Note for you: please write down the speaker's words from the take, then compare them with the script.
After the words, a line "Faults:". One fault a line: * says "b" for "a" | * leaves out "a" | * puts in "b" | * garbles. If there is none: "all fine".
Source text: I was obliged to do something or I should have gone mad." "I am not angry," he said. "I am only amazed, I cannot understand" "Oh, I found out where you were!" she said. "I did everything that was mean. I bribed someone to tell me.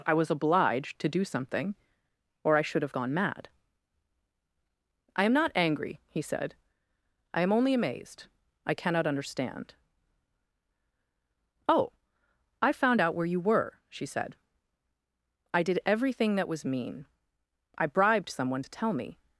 I was obliged to do something or I should have gone mad." "I am not angry," he said. "I am only amazed, I cannot understand" "Oh, I found out where you were!" she said. "I did everything that was mean. I bribed someone to tell me.
Faults:
all fine